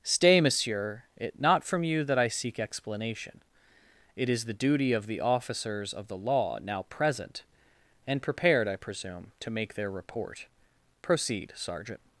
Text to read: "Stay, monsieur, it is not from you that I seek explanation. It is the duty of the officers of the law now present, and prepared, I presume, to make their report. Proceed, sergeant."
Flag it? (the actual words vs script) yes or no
yes